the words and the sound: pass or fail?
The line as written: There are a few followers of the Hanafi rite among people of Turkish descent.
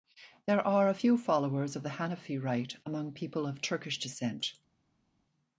pass